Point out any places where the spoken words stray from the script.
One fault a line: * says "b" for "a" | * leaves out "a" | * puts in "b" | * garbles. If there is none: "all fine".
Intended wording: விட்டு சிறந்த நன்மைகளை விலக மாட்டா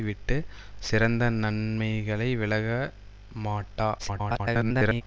* garbles